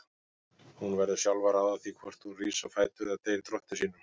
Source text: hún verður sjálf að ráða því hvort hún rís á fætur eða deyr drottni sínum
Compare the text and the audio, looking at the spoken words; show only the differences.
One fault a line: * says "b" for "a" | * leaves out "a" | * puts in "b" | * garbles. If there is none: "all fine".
all fine